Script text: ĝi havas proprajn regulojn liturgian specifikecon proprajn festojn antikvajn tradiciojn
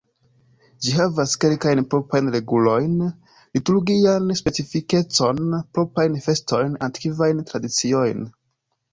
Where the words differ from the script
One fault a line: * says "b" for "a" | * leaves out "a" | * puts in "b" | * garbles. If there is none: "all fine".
* puts in "kelkajn"